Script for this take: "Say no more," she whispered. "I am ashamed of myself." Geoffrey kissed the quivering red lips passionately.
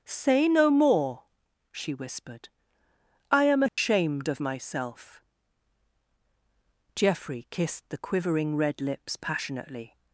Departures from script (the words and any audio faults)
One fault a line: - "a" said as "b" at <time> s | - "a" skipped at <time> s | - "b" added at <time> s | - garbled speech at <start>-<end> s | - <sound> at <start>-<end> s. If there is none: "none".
- dropout at 3.7-3.8 s